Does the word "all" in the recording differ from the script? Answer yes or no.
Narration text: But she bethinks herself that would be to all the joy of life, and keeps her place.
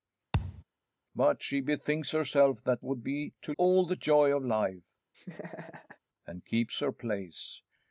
no